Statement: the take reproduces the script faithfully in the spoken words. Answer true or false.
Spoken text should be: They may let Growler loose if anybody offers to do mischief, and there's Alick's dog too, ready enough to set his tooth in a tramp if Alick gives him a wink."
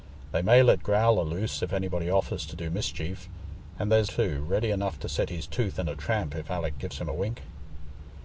false